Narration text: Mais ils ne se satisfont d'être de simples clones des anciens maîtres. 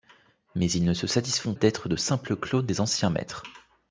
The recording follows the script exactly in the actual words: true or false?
true